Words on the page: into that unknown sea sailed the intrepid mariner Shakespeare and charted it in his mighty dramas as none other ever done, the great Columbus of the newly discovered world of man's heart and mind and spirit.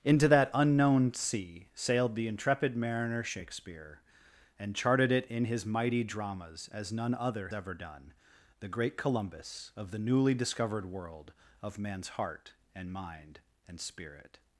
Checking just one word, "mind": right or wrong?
right